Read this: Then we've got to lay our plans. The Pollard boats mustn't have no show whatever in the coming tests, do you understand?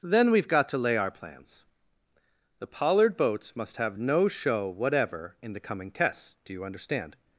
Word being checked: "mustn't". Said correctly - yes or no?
no